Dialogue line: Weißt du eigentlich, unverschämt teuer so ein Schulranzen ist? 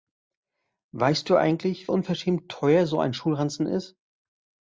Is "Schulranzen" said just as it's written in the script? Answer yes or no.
yes